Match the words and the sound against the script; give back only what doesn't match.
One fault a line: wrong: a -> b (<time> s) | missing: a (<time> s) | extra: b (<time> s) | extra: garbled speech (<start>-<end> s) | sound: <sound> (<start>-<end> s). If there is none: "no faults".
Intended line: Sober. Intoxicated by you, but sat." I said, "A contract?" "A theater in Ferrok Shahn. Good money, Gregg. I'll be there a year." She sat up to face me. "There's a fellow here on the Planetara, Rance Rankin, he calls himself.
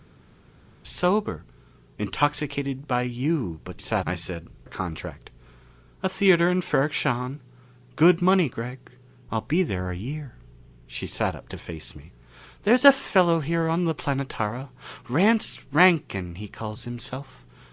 no faults